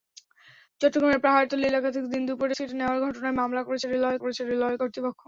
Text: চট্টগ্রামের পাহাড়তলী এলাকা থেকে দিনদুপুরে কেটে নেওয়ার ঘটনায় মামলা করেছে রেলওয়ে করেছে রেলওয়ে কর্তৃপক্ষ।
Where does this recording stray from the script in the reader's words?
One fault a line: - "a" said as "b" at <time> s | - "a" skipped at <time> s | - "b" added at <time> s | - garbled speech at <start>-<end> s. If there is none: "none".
none